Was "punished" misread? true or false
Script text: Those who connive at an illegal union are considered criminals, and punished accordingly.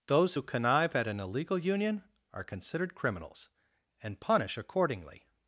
true